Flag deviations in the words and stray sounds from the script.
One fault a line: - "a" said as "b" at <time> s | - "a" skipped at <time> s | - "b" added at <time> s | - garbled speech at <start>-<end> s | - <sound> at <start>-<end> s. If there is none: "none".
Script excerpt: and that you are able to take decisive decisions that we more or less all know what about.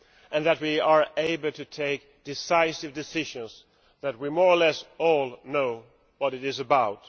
- "you" said as "we" at 0.6 s
- "it is" added at 6.3 s